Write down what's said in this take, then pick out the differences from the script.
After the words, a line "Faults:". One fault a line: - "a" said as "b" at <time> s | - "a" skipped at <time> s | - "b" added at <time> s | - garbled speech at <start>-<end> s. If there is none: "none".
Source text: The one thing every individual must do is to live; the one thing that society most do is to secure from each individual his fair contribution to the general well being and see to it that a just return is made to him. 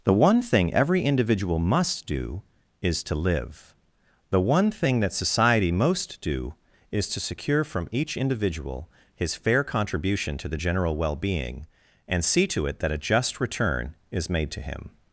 The one thing every individual must do is to live; the one thing that society most do is to secure from each individual his fair contribution to the general well being and see to it that a just return is made to him.
Faults:
none